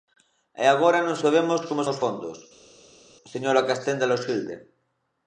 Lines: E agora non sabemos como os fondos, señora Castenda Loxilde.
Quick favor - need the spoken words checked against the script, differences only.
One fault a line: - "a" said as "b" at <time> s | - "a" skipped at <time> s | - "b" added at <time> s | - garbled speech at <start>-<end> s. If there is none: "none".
none